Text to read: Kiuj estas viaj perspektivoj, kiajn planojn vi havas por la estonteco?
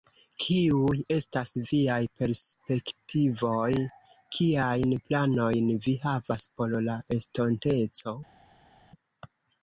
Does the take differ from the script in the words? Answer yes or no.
no